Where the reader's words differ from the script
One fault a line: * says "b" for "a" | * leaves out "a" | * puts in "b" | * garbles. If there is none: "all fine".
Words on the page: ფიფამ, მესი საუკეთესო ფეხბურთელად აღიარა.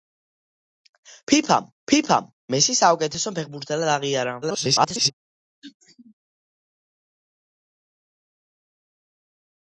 * puts in "ფიფამ"
* garbles